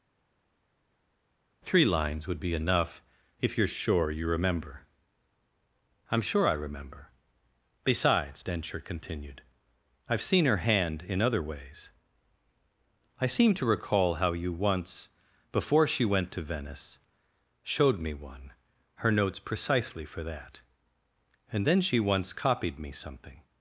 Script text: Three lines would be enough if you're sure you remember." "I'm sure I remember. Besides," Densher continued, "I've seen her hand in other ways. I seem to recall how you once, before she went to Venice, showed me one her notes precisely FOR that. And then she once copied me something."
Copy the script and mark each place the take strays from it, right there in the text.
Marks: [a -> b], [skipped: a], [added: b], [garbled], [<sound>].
Three lines would be enough if you're sure you remember." "I'm sure I remember. Besides," Densher continued, "I've seen her hand in other ways. I seem to recall how you once, before she went to Venice, showed me one her notes precisely FOR that. And then she once copied me something."